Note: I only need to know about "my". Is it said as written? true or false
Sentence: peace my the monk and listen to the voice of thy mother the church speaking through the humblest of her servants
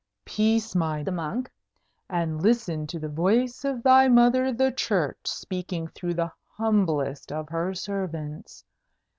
true